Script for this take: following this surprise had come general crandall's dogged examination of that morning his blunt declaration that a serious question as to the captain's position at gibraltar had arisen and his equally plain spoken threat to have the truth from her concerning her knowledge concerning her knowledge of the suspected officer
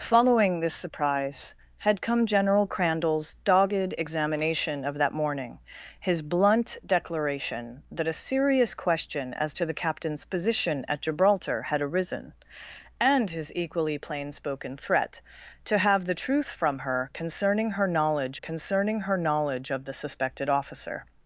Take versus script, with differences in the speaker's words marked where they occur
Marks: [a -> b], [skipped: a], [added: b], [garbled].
following this surprise had come general crandall's dogged examination of that morning his blunt declaration that a serious question as to the captain's position at gibraltar had arisen and his equally plain spoken threat to have the truth from her concerning her knowledge concerning her knowledge of the suspected officer